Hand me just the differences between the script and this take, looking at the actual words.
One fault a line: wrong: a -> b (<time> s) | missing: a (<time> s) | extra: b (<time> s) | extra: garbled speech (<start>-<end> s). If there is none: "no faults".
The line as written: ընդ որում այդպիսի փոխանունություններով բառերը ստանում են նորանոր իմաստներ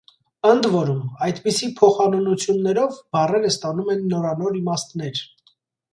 no faults